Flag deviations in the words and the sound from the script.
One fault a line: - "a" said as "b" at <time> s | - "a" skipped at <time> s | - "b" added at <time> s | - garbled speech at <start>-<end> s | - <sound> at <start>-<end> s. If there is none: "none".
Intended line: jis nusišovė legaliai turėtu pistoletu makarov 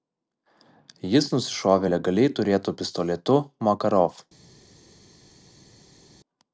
none